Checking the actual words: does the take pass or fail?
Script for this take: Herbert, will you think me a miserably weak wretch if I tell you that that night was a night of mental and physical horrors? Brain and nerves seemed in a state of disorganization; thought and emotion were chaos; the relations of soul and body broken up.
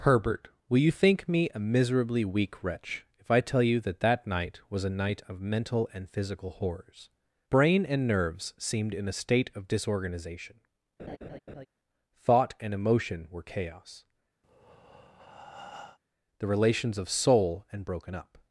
fail